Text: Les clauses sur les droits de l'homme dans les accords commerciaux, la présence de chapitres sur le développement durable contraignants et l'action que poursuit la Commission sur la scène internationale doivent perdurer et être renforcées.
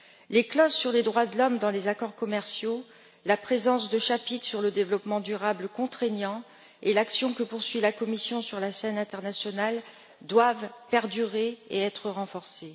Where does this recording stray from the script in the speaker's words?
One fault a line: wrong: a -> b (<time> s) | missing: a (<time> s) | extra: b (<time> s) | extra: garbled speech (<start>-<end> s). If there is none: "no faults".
no faults